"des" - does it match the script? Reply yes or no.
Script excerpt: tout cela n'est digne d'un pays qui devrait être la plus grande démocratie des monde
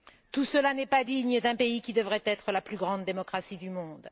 no